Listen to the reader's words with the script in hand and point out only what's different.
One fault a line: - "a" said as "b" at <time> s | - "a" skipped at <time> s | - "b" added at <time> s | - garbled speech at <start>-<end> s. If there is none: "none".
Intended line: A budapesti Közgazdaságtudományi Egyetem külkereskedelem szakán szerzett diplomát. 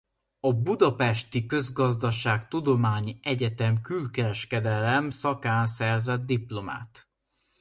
none